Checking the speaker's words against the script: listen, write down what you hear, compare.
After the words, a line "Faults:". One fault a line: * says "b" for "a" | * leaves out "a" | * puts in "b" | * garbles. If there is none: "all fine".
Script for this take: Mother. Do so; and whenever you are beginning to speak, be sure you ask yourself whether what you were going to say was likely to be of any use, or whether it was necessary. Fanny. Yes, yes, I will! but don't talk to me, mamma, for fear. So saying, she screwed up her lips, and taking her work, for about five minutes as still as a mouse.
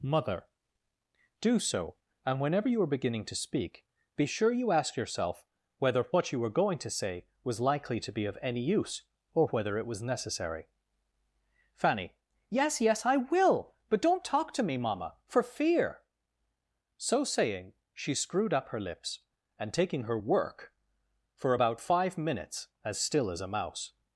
Mother. Do so; and whenever you are beginning to speak, be sure you ask yourself whether what you were going to say was likely to be of any use, or whether it was necessary. Fanny. Yes, yes, I will! but don't talk to me, mamma, for fear. So saying, she screwed up her lips, and taking her work, for about five minutes as still as a mouse.
Faults:
all fine